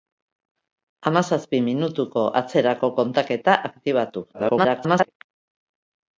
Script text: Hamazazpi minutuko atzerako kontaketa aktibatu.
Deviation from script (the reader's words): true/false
true